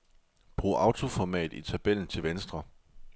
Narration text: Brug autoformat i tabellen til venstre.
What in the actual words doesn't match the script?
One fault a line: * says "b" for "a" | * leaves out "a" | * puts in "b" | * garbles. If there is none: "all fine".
all fine